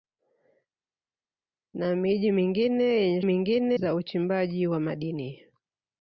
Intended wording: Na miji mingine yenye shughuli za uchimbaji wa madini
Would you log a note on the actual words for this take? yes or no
yes